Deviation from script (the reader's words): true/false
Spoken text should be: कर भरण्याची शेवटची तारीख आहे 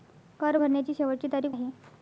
false